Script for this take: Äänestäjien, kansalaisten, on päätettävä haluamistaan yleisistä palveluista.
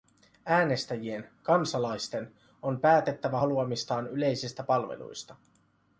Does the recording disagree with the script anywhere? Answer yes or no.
no